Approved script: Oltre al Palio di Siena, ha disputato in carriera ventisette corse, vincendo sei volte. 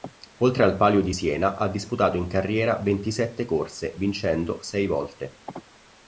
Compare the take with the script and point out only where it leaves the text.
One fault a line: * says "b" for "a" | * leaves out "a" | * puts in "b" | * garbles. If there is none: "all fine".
all fine